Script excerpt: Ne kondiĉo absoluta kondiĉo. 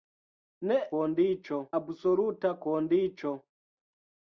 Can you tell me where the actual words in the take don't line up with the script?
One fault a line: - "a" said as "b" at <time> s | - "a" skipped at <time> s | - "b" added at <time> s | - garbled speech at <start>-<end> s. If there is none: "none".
none